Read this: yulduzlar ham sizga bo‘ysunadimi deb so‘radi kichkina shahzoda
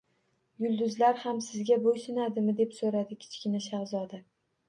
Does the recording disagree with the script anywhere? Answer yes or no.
no